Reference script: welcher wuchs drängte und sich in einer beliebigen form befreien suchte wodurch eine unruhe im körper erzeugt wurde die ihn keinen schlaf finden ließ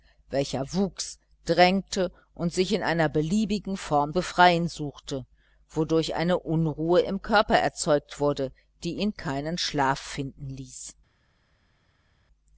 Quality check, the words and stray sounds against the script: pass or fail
pass